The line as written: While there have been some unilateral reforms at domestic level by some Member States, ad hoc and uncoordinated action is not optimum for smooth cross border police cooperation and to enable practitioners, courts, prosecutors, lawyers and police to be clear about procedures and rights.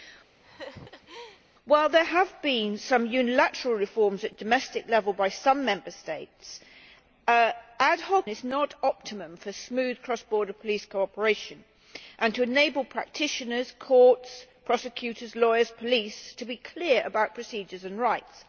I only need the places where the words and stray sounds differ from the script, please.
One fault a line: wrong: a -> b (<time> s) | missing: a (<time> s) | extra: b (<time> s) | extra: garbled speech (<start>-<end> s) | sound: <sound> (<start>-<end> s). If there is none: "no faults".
sound: laugh (0.4-1.4 s)
missing: and uncoordinated action (8.3 s)